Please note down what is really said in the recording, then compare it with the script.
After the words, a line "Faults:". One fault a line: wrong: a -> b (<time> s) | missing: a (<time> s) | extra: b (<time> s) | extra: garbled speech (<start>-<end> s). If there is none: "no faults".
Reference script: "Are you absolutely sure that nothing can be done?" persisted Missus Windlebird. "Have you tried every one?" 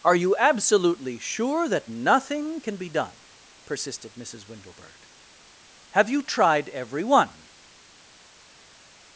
"Are you absolutely sure that nothing can be done?" persisted Missus Windlebird. "Have you tried every one?"
Faults:
no faults